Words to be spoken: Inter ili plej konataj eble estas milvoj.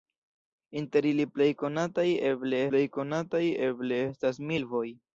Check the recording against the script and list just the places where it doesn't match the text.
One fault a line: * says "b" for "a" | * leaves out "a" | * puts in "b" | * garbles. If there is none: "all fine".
* puts in "plej konataj eble"